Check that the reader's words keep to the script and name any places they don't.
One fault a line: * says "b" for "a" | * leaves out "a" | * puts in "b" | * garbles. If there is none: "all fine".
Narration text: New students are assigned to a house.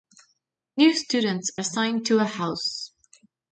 * leaves out "are"